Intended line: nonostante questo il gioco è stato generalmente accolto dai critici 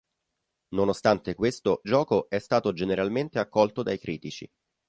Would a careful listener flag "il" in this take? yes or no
yes